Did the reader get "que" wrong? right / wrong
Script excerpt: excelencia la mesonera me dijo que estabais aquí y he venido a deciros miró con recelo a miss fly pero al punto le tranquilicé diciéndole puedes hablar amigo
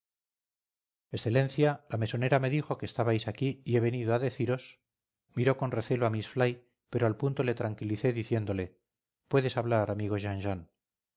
right